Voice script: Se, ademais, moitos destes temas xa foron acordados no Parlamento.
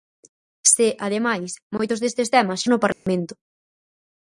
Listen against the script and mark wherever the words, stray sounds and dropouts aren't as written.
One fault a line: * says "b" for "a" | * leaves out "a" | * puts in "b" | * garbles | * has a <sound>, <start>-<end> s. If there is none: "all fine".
* leaves out "xa foron acordados"
* has a dropout, 2.9-3.1 s